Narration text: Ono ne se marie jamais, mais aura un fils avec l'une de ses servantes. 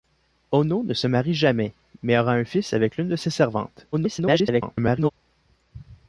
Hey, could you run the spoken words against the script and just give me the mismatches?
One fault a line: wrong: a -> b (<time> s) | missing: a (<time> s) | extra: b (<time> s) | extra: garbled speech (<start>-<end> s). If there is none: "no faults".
extra: garbled speech (3.9-5.1 s)